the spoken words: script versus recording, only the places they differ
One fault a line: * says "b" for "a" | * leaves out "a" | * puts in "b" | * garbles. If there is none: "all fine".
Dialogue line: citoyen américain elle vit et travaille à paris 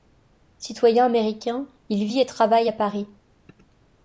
* says "il" for "elle"